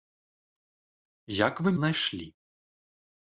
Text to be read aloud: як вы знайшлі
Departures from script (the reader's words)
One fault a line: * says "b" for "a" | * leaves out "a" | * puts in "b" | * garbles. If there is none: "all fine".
all fine